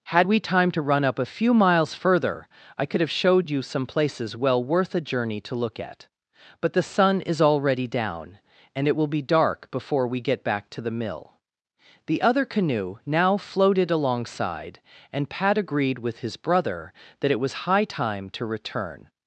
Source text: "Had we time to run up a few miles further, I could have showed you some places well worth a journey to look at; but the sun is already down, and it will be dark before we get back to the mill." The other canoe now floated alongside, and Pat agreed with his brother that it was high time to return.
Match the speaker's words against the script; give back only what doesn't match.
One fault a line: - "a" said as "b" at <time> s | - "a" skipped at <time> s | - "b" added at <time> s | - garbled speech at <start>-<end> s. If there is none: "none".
none